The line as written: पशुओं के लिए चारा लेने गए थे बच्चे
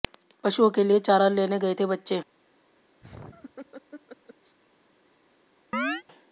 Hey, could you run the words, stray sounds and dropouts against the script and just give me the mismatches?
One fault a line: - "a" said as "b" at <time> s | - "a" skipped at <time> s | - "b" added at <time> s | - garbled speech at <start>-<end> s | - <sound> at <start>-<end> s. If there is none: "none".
- laugh at 3.0-4.6 s
- chirp at 5.7-6.0 s